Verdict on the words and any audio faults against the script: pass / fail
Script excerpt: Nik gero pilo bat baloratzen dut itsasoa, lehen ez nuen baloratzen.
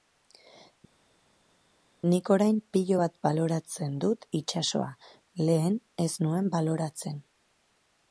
fail